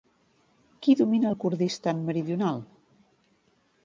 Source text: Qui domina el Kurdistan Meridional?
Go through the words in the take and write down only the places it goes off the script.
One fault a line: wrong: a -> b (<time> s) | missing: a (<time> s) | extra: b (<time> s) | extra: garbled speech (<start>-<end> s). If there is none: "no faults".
no faults